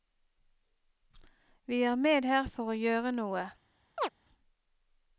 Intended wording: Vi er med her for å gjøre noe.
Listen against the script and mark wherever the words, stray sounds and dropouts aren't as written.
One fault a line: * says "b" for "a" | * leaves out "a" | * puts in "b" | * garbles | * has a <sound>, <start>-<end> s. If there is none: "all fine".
* has a chirp, 4.0-4.1 s